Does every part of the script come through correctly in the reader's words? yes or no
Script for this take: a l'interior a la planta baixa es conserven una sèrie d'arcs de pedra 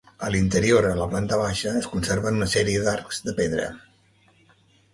yes